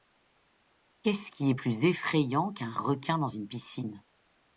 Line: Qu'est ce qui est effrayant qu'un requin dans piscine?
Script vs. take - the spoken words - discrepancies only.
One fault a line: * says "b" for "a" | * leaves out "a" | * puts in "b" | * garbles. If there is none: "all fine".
* puts in "plus"
* puts in "une"